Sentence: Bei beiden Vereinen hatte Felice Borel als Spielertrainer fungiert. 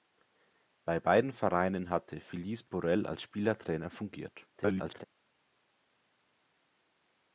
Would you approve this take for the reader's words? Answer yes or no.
no